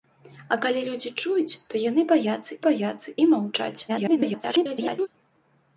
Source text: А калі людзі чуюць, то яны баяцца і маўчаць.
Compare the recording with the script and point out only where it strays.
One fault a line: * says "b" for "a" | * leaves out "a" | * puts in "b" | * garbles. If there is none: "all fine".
* puts in "баяцца"
* garbles